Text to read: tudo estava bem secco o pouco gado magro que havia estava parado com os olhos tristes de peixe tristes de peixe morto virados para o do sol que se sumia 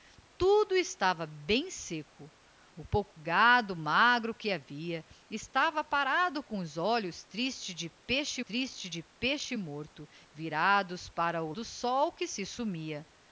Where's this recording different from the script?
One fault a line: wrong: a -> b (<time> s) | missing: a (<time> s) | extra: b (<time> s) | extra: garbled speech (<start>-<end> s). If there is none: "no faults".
no faults